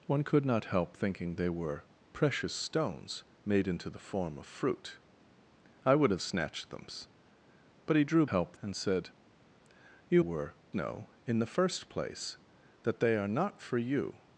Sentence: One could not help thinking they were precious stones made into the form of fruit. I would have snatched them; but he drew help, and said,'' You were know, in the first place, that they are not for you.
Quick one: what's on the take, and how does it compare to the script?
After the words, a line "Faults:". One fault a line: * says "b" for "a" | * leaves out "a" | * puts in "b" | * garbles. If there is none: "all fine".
One could not help thinking they were precious stones made into the form of fruit. I would have snatched them; but he drew help, and said,'' You were know, in the first place, that they are not for you.
Faults:
all fine